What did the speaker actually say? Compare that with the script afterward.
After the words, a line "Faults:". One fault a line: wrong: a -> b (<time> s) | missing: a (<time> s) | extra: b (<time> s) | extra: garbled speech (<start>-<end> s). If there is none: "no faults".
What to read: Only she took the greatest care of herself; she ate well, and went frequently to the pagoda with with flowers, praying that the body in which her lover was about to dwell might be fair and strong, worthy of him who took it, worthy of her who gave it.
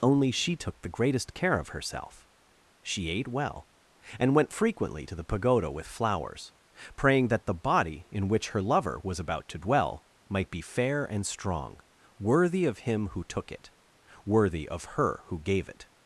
Only she took the greatest care of herself; she ate well, and went frequently to the pagoda with flowers, praying that the body in which her lover was about to dwell might be fair and strong, worthy of him who took it, worthy of her who gave it.
Faults:
missing: with (5.9 s)